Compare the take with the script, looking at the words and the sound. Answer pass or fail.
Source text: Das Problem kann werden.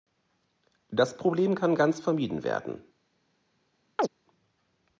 fail